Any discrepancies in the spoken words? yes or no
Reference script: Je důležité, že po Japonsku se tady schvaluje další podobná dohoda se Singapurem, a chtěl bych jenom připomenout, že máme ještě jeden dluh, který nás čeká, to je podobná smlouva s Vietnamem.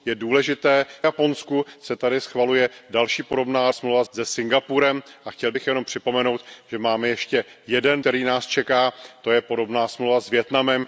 yes